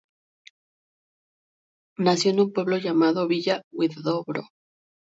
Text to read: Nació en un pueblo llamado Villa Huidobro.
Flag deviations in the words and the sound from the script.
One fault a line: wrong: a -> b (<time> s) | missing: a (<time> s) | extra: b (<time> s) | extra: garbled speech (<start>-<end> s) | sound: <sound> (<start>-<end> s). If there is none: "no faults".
no faults